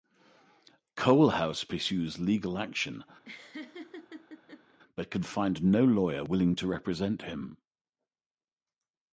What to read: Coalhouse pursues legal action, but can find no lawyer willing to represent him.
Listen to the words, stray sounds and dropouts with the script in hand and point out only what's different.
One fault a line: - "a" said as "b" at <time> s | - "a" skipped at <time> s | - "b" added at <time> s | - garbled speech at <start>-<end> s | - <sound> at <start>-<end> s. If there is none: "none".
- laugh at 3.2-4.8 s